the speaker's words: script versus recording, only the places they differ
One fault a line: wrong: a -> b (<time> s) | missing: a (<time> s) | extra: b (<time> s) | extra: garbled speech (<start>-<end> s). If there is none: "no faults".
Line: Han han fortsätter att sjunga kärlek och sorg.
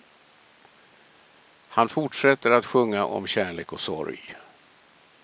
missing: han (1.9 s)
extra: om (3.1 s)